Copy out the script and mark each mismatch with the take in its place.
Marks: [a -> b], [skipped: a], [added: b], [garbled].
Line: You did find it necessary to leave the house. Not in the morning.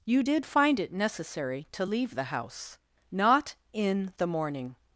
You did find it necessary to leave the house. Not in the morning.